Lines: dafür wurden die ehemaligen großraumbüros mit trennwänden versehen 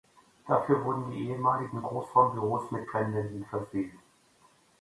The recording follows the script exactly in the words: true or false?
true